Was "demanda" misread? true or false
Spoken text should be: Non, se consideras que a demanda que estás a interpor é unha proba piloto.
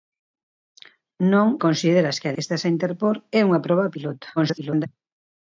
true